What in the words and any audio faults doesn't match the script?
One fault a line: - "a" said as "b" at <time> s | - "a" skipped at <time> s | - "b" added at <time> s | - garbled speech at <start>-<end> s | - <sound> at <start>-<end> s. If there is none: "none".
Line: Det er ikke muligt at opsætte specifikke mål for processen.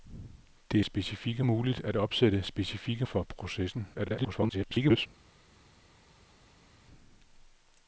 - "ikke" said as "specifikke" at 0.8 s
- "mål" skipped at 3.1 s
- garbled speech at 3.9-5.1 s